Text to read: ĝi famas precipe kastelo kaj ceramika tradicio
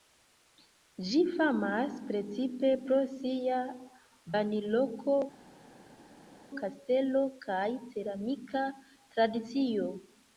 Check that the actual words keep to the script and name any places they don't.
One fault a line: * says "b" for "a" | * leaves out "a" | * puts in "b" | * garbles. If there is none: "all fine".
* puts in "pro sia banloko"